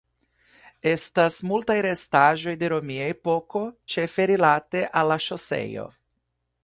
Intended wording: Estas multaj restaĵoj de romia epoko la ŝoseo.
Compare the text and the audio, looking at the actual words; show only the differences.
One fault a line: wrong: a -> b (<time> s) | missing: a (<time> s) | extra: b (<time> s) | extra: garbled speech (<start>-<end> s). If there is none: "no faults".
extra: ĉefe rilate al (4.0 s)